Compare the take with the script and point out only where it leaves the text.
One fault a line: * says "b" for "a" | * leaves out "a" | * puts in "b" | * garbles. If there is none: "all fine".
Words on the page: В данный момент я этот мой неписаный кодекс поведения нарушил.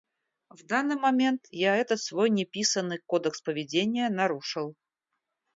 * says "свой" for "мой"